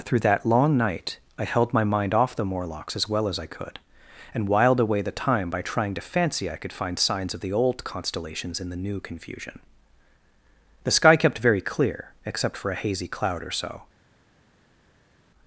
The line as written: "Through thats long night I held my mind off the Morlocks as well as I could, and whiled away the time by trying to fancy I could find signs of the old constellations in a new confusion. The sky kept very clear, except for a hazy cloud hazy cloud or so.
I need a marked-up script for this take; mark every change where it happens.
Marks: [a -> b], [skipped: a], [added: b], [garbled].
"Through [thats -> that] long night I held my mind off the Morlocks as well as I could, and whiled away the time by trying to fancy I could find signs of the old constellations in [a -> the] new confusion. The sky kept very clear, except for a hazy cloud [skipped: hazy cloud] or so.